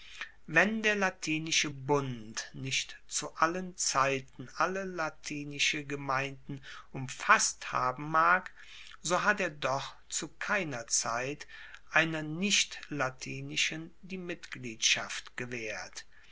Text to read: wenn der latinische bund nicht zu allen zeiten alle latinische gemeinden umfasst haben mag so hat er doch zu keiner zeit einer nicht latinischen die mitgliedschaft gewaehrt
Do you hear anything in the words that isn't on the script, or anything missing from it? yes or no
no